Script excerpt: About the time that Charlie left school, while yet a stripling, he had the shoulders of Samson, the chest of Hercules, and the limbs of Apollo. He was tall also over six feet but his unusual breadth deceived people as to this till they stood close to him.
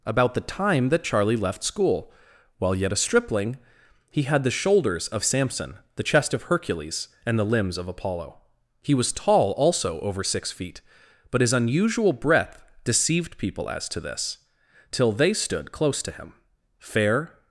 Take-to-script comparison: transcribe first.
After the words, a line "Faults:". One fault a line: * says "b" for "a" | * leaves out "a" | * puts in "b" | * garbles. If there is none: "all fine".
About the time that Charlie left school, while yet a stripling, he had the shoulders of Samson, the chest of Hercules, and the limbs of Apollo. He was tall also over six feet but his unusual breadth deceived people as to this till they stood close to him. Fair
Faults:
* puts in "Fair"